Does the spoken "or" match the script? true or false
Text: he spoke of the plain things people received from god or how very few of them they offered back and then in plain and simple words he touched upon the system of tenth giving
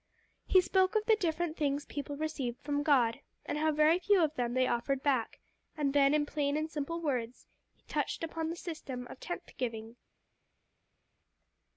false